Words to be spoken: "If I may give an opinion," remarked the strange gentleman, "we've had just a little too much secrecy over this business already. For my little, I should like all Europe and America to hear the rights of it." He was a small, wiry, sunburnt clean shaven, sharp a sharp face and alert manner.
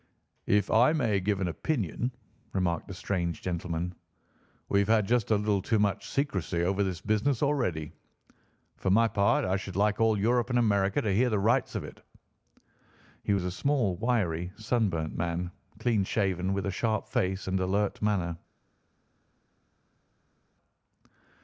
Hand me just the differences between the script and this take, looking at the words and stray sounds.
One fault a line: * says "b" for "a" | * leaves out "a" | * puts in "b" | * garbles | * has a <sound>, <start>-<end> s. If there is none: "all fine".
* says "part" for "little"
* puts in "man"
* says "with" for "sharp"